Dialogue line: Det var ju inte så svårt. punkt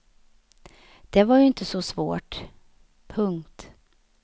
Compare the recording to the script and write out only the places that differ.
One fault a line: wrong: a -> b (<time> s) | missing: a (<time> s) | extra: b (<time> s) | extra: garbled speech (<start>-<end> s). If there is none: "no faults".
no faults